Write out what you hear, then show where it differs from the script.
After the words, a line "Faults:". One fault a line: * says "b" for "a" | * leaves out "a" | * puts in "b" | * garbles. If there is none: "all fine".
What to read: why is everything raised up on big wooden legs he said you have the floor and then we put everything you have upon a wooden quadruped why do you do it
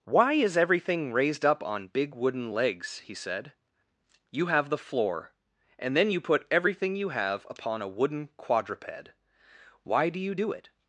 why is everything raised up on big wooden legs he said you have the floor and then you put everything you have upon a wooden quadruped why do you do it
Faults:
* says "you" for "we"